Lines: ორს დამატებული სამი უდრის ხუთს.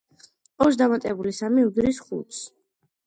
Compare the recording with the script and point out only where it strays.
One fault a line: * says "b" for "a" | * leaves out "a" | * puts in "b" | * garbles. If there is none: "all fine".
all fine